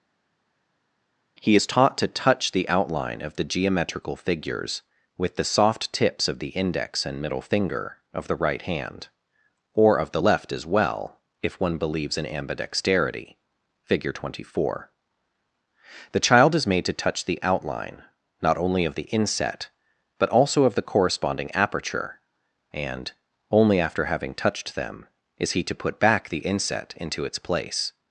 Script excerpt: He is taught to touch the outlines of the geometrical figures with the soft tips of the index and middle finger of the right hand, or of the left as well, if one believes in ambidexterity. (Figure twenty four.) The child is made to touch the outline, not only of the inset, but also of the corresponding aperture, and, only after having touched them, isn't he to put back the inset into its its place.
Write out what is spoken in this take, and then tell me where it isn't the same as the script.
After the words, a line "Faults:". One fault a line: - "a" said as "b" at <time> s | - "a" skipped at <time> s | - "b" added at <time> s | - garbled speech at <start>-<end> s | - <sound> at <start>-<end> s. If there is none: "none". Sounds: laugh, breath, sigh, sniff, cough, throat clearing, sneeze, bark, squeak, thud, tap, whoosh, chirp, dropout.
He is taught to touch the outline of the geometrical figures with the soft tips of the index and middle finger of the right hand, or of the left as well, if one believes in ambidexterity. (Figure twenty four.) The child is made to touch the outline, not only of the inset, but also of the corresponding aperture, and, only after having touched them, is he to put back the inset into its place.
Faults:
- "outlines" said as "outline" at 2.7 s
- "isn't" said as "is" at 25.4 s
- "its" skipped at 27.4 s